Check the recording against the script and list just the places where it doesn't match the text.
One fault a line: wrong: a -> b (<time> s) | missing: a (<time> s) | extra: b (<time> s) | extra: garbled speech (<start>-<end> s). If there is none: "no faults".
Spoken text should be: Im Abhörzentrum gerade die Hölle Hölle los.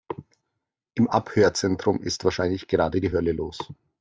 extra: ist wahrscheinlich (2.0 s)
missing: Hölle (3.3 s)